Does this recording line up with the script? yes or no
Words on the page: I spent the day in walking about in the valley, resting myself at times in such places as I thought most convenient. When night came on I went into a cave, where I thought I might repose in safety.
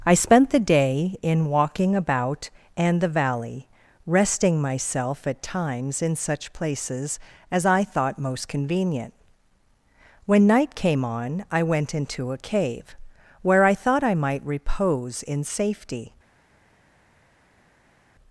no